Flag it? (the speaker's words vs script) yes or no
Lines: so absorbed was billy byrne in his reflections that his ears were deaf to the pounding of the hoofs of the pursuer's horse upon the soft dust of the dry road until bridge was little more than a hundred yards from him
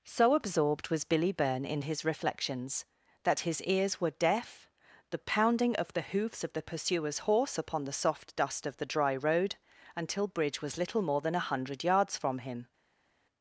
yes